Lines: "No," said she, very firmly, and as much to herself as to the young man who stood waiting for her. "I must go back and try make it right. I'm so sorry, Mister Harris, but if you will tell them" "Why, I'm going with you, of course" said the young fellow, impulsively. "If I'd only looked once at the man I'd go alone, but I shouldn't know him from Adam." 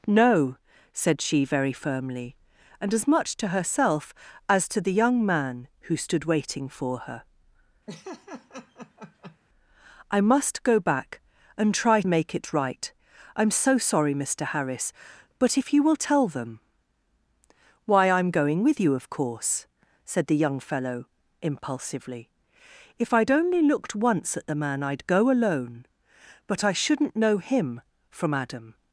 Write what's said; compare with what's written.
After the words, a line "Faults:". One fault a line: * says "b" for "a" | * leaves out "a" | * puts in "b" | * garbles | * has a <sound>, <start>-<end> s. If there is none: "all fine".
"No," said she, very firmly, and as much to herself as to the young man who stood waiting for her. "I must go back and try make it right. I'm so sorry, Mister Harris, but if you will tell them" "Why, I'm going with you, of course" said the young fellow, impulsively. "If I'd only looked once at the man I'd go alone, but I shouldn't know him from Adam."
Faults:
* has a laugh, 7.9-9.4 s